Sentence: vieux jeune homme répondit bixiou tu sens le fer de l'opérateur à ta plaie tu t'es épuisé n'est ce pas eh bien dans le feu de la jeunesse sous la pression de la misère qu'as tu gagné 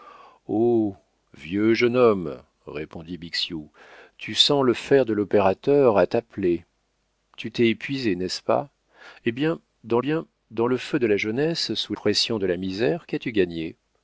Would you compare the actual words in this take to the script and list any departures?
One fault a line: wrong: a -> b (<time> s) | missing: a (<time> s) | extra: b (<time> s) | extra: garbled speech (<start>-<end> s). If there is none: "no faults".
extra: bien dans (10.0 s)
missing: la (11.9 s)